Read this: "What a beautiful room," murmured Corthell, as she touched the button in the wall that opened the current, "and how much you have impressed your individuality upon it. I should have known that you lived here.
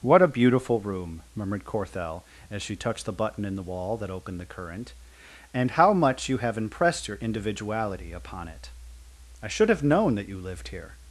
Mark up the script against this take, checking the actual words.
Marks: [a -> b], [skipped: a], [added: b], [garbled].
"What a beautiful room," murmured Corthell, as she touched the button in the wall that opened the current, "and how much you have impressed your individuality upon it. I should have known that you lived here.